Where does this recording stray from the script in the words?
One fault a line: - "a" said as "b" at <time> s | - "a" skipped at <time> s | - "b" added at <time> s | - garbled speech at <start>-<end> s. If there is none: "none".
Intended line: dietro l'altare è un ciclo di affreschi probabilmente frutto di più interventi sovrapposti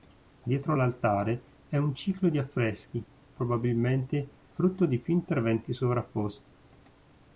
none